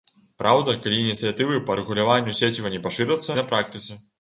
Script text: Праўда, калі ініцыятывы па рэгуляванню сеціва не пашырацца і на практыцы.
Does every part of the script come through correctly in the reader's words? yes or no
yes